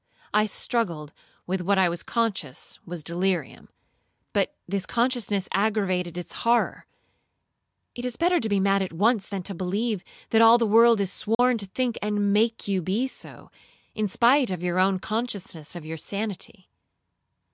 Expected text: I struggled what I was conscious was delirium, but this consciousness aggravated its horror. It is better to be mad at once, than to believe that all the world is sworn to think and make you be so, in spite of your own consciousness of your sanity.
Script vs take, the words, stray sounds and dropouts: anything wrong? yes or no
yes